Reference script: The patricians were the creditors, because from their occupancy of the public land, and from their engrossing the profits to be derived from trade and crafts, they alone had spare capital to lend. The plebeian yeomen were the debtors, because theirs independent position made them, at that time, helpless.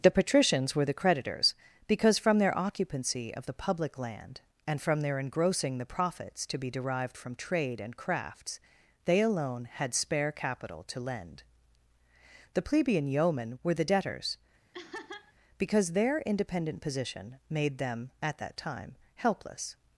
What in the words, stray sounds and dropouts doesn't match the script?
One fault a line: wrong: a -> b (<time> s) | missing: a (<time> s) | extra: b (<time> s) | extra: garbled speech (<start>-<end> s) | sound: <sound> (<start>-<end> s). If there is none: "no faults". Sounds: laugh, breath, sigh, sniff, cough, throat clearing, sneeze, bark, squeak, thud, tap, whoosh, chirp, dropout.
sound: laugh (14.7-15.3 s)
wrong: theirs -> their (15.9 s)